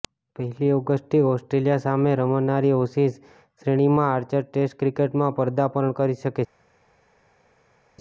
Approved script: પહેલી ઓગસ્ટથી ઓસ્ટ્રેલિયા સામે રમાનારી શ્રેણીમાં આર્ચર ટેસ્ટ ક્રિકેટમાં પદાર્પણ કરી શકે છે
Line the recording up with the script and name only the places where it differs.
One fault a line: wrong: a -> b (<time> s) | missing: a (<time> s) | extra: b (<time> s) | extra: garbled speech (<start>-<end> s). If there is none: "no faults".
extra: એશિઝ (2.8 s)